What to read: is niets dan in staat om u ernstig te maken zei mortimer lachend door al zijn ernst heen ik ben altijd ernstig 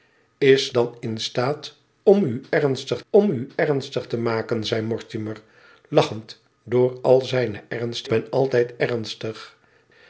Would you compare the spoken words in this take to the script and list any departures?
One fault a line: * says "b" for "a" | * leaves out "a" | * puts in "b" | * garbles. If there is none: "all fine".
* leaves out "niets"
* puts in "om u ernstig"
* leaves out "heen ik"